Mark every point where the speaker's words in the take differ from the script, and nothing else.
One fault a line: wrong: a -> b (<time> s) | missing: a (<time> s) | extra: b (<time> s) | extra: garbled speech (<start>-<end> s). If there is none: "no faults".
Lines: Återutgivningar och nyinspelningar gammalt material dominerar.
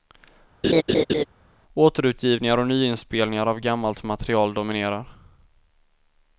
extra: av (3.5 s)